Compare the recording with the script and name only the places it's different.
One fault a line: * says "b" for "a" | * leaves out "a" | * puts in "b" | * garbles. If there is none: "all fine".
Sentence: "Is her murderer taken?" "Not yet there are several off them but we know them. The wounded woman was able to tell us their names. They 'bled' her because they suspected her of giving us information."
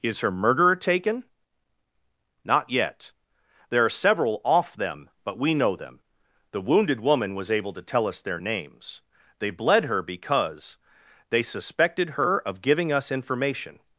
all fine